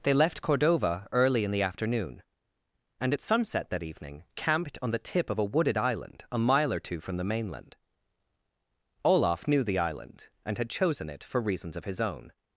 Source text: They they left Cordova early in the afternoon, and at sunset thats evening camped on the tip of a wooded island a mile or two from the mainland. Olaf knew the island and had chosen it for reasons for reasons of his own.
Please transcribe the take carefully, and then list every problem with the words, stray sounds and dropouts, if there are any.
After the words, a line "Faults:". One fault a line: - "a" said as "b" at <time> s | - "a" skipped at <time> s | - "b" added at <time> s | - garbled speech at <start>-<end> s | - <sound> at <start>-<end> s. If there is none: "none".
They left Cordova early in the afternoon, and at sunset that evening camped on the tip of a wooded island a mile or two from the mainland. Olaf knew the island and had chosen it for reasons of his own.
Faults:
- "they" skipped at 0.1 s
- "thats" said as "that" at 3.7 s
- "for reasons" skipped at 11.8 s